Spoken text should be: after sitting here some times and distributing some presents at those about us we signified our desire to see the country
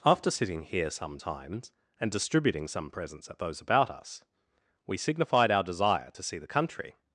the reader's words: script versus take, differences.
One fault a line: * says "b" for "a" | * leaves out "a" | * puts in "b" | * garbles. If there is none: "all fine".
all fine